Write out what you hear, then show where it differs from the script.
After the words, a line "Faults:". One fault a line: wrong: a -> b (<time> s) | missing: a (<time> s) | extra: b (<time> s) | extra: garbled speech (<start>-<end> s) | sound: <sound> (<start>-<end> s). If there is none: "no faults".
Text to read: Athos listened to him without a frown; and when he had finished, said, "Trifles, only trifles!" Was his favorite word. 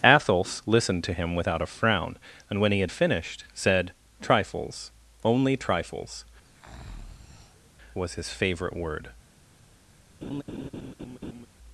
Athos listened to him without a frown; and when he had finished, said, "Trifles, only trifles!" Was his favorite word.
Faults:
sound: breath (6.4-7.7 s)
sound: laugh (10.2-11.5 s)